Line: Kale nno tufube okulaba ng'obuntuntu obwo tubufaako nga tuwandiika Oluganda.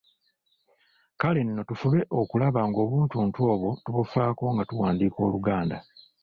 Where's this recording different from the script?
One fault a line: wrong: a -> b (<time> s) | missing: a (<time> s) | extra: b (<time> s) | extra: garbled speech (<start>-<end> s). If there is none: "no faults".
no faults